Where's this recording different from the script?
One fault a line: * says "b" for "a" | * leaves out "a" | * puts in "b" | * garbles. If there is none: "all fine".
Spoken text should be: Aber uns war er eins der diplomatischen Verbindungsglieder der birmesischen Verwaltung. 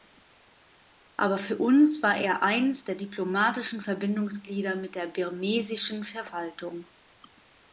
* puts in "für"
* puts in "mit"